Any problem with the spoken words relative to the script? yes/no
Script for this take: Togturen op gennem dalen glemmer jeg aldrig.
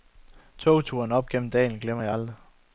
no